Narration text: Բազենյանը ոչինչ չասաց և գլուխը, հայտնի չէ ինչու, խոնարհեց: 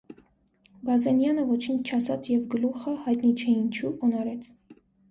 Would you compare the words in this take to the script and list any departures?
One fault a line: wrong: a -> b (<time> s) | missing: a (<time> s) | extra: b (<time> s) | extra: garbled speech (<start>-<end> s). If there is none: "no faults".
no faults